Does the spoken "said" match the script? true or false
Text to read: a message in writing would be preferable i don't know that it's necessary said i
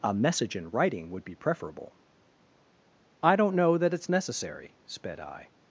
false